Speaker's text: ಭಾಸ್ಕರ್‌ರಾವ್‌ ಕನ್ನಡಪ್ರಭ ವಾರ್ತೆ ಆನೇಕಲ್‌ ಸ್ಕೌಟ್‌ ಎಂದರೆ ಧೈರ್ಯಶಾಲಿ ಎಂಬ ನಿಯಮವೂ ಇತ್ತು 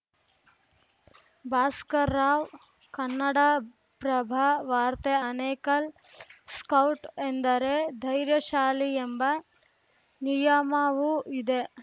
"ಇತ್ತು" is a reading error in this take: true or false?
true